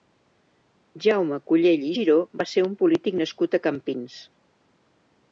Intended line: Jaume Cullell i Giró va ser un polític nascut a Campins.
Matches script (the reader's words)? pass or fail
pass